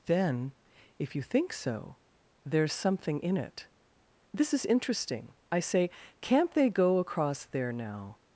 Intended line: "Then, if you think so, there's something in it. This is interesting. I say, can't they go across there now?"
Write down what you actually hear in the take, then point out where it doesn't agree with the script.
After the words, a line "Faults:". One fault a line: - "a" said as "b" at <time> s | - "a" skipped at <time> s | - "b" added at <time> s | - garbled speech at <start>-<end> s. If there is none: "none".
"Then, if you think so, there's something in it. This is interesting. I say, can't they go across there now?"
Faults:
none